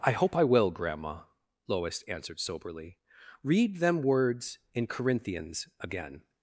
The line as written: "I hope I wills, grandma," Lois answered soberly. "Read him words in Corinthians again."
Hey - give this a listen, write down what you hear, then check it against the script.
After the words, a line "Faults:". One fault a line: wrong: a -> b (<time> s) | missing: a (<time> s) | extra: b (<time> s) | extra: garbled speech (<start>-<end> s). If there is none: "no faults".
"I hope I will, grandma," Lois answered soberly. "Read them words in Corinthians again."
Faults:
wrong: wills -> will (0.4 s)
wrong: him -> them (3.8 s)